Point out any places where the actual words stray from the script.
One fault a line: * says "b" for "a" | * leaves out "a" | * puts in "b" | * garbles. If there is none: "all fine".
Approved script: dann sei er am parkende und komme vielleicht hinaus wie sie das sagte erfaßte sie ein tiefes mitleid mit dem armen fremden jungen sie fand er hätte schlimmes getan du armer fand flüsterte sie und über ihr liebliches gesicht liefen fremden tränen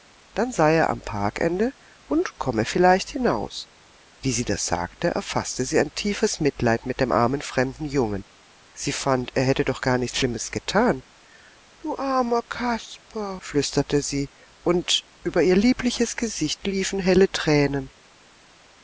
* puts in "doch gar nichts"
* says "kasper" for "fand"
* says "helle" for "fremden"